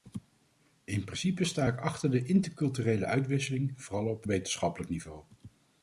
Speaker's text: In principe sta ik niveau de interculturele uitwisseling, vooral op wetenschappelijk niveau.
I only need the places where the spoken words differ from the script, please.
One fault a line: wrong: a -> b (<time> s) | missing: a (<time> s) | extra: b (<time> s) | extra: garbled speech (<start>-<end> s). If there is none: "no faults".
wrong: niveau -> achter (1.8 s)